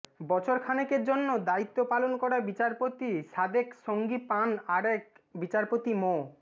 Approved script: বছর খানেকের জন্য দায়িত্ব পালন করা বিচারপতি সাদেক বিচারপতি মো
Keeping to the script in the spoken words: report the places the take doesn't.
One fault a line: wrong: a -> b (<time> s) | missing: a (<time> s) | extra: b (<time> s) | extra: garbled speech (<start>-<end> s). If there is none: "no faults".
extra: সঙ্গী পান আরেক (3.9 s)